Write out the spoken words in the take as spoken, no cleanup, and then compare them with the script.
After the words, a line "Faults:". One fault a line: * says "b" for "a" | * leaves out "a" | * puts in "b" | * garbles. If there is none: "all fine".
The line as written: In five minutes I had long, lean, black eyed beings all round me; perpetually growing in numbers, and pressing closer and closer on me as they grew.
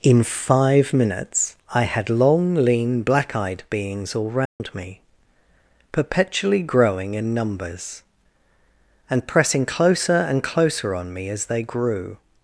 In five minutes I had long, lean, black eyed beings all round me; perpetually growing in numbers, and pressing closer and closer on me as they grew.
Faults:
all fine